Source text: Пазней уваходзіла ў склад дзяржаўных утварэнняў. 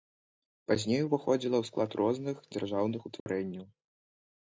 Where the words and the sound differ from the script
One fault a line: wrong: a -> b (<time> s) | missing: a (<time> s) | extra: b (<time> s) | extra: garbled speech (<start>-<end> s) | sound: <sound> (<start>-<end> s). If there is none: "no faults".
extra: розных (2.0 s)
sound: dropout (3.2-3.3 s)